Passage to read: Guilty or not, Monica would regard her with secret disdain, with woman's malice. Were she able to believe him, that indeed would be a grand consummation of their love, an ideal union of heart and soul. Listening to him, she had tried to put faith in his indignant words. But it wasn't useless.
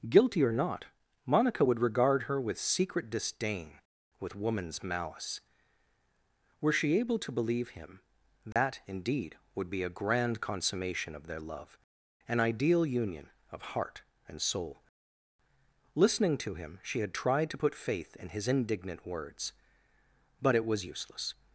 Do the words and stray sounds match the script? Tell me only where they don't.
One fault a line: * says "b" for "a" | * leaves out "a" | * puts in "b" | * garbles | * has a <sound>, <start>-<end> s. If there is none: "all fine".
* has a dropout, 8.5-8.6 s
* says "was" for "wasn't"